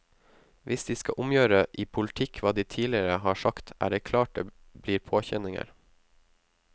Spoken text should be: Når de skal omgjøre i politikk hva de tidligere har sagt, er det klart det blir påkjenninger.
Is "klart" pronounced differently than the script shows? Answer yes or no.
no